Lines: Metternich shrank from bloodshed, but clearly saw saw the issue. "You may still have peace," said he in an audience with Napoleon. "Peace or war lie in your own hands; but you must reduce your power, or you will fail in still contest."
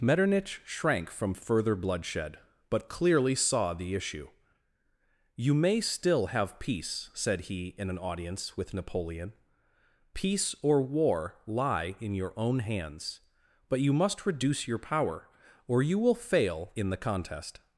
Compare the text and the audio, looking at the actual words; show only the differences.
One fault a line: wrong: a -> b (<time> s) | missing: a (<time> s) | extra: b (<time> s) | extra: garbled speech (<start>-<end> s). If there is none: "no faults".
extra: further (1.4 s)
missing: saw (3.8 s)
wrong: still -> the (16.9 s)